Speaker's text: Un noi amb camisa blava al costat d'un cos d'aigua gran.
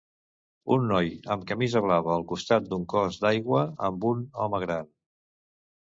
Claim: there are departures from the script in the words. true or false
true